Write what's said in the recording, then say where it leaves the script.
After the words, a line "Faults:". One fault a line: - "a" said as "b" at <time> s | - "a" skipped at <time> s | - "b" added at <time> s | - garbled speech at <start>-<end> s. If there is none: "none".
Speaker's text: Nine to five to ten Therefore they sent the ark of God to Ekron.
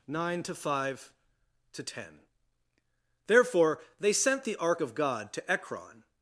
Nine to five to ten Therefore they sent the ark of God to Ekron.
Faults:
none